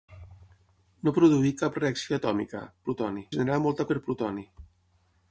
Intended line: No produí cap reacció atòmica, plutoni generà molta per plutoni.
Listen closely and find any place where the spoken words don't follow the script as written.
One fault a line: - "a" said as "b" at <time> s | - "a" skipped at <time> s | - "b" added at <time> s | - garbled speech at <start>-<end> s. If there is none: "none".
none